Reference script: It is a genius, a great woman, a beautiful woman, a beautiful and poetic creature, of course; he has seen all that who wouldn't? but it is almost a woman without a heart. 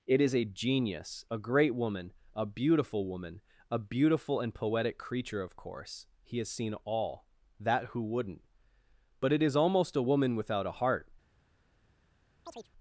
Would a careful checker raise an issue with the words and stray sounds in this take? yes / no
yes